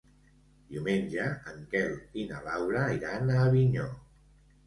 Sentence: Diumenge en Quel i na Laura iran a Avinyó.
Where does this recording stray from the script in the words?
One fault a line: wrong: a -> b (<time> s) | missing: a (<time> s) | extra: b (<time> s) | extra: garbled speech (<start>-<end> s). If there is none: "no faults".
no faults